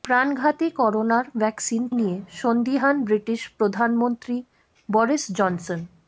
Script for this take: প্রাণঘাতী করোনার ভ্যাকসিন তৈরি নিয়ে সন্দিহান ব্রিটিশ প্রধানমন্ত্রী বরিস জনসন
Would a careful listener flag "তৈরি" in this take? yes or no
yes